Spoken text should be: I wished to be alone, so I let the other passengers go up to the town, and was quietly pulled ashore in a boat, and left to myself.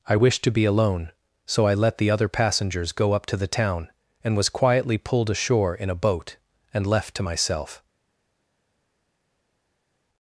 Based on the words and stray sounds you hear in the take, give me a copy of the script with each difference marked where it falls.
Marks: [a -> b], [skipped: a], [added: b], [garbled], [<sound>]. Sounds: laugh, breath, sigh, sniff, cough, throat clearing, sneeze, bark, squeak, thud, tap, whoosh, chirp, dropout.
I wished to be alone, so I let the other passengers go up to the town, and was quietly pulled ashore in a boat, and left to myself.